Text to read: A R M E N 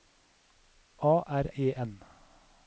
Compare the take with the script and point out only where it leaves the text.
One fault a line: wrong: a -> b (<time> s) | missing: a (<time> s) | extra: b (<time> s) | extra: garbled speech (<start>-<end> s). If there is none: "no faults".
missing: M (1.4 s)